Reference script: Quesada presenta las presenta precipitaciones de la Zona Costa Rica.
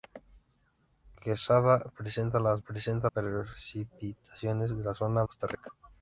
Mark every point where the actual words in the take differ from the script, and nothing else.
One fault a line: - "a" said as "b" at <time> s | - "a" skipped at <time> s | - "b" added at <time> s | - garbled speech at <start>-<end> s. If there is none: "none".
none